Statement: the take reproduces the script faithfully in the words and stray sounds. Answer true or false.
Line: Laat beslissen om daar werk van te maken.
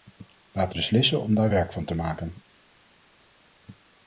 true